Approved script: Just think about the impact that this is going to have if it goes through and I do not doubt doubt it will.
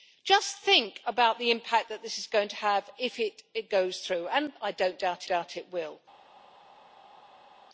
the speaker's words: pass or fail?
pass